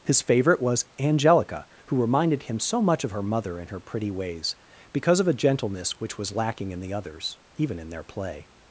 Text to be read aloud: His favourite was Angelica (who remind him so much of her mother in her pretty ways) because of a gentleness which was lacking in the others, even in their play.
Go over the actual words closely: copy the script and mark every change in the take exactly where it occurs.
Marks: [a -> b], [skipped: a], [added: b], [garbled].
His favourite was Angelica (who [remind -> reminded] him so much of her mother in her pretty ways) because of a gentleness which was lacking in the others, even in their play.